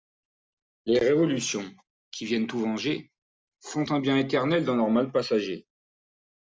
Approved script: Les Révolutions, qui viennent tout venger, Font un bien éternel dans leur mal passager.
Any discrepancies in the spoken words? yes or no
no